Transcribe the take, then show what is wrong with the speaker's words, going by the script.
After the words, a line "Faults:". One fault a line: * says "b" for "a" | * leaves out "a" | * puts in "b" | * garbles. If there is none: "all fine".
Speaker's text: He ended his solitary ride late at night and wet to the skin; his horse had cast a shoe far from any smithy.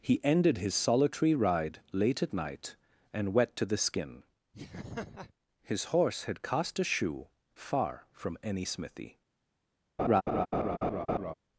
He ended his solitary ride late at night and wet to the skin; his horse had cast a shoe far from any smithy.
Faults:
all fine